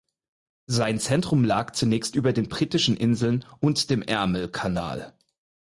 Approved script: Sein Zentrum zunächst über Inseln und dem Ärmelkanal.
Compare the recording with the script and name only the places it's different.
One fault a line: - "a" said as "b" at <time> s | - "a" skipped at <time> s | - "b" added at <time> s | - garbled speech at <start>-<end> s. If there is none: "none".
- "lag" added at 1.4 s
- "den Britischen" added at 2.3 s